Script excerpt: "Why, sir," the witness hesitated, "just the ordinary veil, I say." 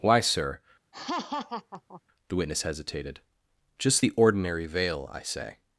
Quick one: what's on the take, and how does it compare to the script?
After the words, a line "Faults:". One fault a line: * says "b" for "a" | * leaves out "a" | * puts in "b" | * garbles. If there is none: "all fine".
"Why, sir," the witness hesitated, "just the ordinary veil, I say."
Faults:
all fine